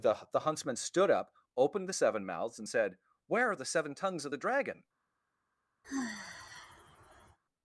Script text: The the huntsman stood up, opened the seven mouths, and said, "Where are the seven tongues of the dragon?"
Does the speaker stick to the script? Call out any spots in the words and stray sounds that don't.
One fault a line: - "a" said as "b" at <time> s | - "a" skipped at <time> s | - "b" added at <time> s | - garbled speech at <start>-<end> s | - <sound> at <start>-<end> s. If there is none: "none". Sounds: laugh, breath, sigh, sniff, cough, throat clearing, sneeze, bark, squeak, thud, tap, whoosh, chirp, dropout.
- sigh at 5.8-7.4 s